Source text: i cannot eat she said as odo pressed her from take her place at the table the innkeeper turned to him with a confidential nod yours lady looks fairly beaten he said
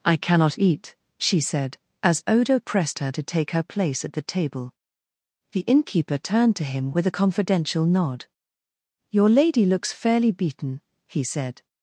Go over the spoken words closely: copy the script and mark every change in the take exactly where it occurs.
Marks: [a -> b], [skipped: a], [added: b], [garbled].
i cannot eat she said as odo pressed her [from -> to] take her place at the table the innkeeper turned to him with a confidential nod [yours -> your] lady looks fairly beaten he said